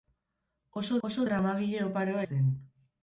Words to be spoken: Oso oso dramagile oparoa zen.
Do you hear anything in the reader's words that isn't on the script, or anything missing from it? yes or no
no